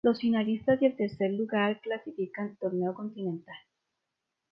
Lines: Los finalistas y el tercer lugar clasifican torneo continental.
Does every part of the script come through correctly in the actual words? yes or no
yes